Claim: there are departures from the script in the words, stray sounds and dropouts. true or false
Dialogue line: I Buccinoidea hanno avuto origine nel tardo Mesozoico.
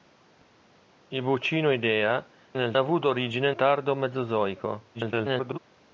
true